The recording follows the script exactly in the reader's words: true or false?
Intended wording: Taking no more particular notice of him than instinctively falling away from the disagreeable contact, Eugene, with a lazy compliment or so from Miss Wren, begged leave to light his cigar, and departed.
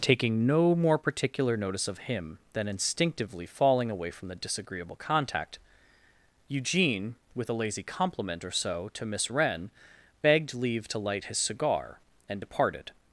false